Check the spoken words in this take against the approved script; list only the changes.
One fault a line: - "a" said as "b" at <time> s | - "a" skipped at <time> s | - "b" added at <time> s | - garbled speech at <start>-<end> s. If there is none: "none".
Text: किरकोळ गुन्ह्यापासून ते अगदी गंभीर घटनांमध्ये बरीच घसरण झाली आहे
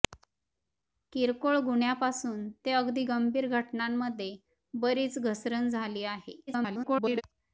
- garbled speech at 6.5-7.2 s